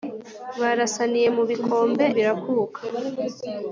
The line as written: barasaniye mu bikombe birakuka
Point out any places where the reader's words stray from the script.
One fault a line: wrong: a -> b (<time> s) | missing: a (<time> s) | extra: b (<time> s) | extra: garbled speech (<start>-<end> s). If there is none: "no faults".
no faults